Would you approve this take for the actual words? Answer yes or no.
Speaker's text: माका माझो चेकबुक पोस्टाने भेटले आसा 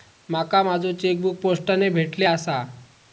yes